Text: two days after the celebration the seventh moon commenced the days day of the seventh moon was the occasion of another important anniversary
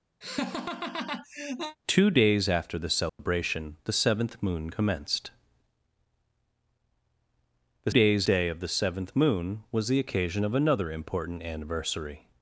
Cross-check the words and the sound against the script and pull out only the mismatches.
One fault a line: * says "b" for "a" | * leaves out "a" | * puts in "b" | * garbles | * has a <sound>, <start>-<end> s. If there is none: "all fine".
* has a laugh, 0.2-1.8 s
* has a dropout, 3.1-3.2 s